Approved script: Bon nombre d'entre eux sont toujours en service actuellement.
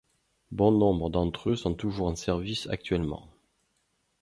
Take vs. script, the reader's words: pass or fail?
pass